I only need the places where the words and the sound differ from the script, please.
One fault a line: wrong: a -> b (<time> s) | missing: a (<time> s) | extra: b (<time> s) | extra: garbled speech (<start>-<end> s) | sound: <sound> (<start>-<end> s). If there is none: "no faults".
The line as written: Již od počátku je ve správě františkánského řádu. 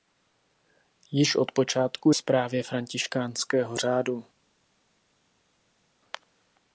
missing: je ve (2.1 s)